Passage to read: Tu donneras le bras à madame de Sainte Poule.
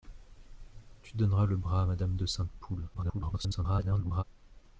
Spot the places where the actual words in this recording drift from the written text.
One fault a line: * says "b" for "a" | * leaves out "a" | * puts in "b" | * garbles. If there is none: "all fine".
* garbles